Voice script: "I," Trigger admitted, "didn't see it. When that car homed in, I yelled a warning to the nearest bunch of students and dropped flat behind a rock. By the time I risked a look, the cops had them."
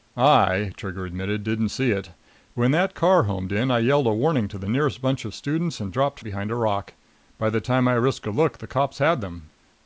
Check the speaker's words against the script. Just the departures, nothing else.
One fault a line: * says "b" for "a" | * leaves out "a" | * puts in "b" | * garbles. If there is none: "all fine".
* leaves out "flat"